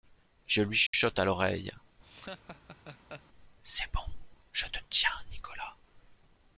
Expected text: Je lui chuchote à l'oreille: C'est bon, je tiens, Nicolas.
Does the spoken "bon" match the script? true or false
true